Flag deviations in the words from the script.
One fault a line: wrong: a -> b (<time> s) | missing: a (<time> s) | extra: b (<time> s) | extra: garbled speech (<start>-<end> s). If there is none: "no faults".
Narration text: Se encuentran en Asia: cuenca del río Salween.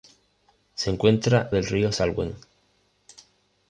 missing: en Asia cuenca (1.5 s)